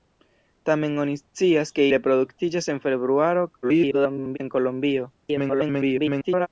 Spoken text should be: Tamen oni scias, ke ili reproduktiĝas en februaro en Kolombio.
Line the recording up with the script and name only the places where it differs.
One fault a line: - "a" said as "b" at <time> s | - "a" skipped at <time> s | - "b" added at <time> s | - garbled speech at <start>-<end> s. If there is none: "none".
- "ili" skipped at 1.9 s
- garbled speech at 3.6-4.4 s
- garbled speech at 5.2-6.5 s